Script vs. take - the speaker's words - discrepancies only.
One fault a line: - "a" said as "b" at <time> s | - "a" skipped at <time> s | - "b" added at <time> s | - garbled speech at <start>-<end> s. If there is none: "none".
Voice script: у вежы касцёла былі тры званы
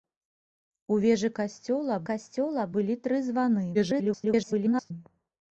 - "касцёла" added at 2.1 s
- garbled speech at 3.7-4.9 s